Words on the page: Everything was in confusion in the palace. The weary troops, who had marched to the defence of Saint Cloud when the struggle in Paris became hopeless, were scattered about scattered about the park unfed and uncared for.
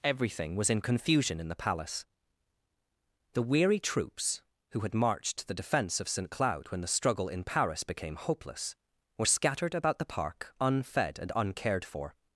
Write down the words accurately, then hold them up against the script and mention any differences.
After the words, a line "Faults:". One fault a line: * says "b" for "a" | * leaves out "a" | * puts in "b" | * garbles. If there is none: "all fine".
Everything was in confusion in the palace. The weary troops, who had marched to the defence of Saint Cloud when the struggle in Paris became hopeless, were scattered about the park unfed and uncared for.
Faults:
* leaves out "scattered about"